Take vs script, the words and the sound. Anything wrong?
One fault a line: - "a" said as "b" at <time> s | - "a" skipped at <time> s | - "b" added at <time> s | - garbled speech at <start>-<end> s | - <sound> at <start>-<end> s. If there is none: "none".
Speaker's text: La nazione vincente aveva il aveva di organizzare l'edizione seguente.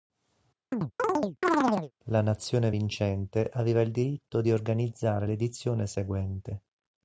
- chirp at 0.7-1.9 s
- "aveva" said as "diritto" at 3.9 s